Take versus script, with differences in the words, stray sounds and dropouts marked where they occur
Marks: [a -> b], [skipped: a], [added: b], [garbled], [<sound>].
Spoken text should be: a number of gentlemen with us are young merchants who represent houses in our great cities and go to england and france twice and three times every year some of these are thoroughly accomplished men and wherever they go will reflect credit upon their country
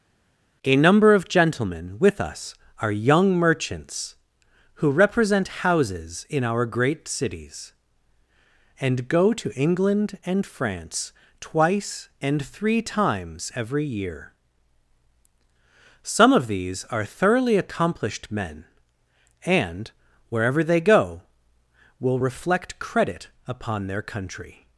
a number of gentlemen with us are young merchants who represent houses in our great cities and go to england and france twice and three times every year some of these are thoroughly accomplished men and wherever they go will reflect credit upon their country